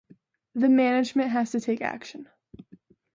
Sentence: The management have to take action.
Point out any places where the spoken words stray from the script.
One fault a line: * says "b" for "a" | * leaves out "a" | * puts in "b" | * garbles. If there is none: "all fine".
* says "has" for "have"